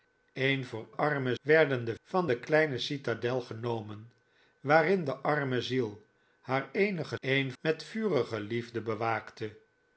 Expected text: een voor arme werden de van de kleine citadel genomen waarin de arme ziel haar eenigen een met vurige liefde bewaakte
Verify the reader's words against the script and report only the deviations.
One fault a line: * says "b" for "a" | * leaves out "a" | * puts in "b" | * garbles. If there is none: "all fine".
all fine